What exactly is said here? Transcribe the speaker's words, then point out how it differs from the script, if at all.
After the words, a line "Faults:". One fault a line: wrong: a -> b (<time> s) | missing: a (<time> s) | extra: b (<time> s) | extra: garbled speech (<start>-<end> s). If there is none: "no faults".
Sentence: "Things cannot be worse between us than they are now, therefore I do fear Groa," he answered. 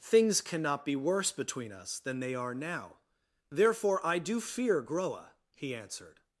"Things cannot be worse between us than they are now, therefore I do fear Groa," he answered.
Faults:
no faults